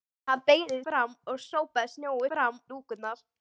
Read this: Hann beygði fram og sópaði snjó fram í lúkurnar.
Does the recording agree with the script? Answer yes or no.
yes